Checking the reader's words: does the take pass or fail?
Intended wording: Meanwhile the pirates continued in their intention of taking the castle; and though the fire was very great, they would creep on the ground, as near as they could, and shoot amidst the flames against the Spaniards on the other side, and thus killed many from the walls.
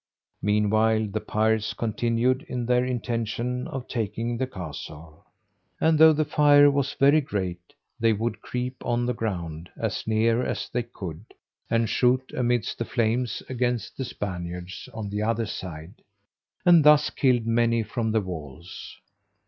pass